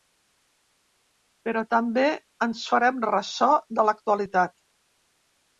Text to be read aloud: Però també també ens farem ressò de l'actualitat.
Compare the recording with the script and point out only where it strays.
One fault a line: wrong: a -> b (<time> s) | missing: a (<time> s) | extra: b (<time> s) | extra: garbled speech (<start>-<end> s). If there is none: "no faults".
missing: també (2.0 s)